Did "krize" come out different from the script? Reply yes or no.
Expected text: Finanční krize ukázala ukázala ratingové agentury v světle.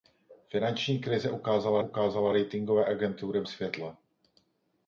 no